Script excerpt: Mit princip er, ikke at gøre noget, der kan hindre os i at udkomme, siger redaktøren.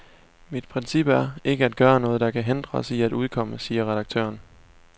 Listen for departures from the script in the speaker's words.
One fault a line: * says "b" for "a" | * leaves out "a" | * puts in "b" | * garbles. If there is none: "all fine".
all fine